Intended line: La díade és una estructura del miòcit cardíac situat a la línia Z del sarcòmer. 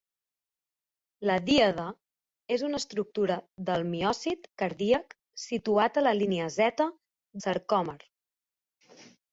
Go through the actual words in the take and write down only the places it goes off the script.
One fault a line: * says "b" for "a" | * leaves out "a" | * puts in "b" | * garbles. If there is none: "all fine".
* leaves out "del"